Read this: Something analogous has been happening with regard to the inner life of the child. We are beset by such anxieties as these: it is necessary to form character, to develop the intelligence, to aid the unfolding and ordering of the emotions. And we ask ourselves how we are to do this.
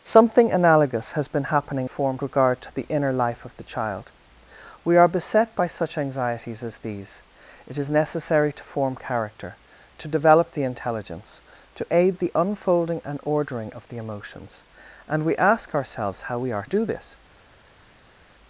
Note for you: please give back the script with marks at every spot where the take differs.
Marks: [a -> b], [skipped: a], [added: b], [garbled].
Something analogous has been happening [with -> form] regard to the inner life of the child. We are beset by such anxieties as these: it is necessary to form character, to develop the intelligence, to aid the unfolding and ordering of the emotions. And we ask ourselves how we are [skipped: to] do this.